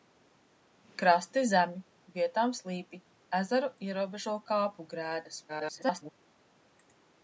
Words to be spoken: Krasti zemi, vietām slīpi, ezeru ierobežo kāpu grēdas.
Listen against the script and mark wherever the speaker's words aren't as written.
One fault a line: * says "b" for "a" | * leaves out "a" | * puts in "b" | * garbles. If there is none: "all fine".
* garbles